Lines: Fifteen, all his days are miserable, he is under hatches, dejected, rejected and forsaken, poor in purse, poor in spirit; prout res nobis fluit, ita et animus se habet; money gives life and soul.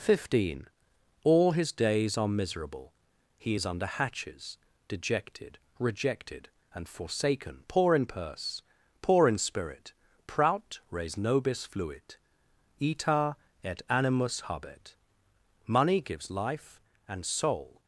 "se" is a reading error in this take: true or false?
true